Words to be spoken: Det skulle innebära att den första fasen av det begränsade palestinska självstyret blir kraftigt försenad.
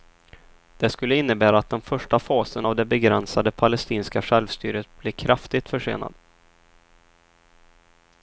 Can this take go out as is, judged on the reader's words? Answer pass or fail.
pass